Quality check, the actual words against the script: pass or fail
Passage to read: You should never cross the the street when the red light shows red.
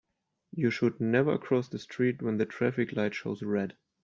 fail